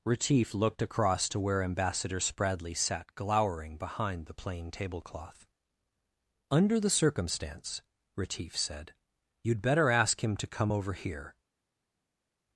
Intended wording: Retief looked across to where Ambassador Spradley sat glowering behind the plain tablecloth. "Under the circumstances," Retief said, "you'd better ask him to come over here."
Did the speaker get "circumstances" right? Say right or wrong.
wrong